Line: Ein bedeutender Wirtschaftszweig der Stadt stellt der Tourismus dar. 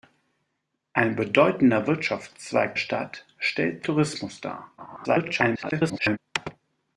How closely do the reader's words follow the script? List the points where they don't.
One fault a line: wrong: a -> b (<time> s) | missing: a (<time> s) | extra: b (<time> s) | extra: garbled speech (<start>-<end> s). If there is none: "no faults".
missing: der (2.8 s)
missing: der (3.9 s)
extra: garbled speech (4.8-6.2 s)